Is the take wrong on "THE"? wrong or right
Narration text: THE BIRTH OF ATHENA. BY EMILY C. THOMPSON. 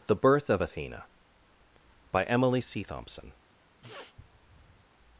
right